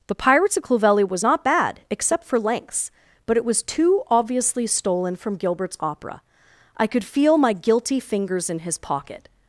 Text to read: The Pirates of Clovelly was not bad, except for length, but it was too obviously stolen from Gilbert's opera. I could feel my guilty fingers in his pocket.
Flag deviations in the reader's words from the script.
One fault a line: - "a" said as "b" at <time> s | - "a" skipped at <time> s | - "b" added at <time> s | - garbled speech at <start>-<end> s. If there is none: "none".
- "length" said as "lengths" at 2.4 s